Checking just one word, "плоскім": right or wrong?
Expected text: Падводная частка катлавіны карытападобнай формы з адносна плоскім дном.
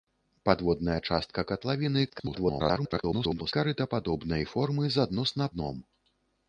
wrong